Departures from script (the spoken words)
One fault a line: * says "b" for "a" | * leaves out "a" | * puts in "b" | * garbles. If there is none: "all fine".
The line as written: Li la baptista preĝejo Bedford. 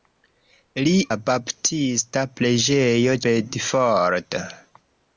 all fine